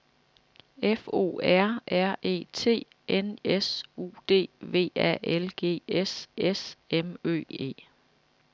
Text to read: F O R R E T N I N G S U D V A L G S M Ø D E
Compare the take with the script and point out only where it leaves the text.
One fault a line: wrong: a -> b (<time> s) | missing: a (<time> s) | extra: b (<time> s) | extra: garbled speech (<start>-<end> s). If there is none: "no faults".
missing: I N G (3.4 s)
extra: S (6.3 s)
missing: D (7.4 s)